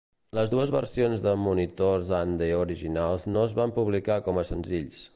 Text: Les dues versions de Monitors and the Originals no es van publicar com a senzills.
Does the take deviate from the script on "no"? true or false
false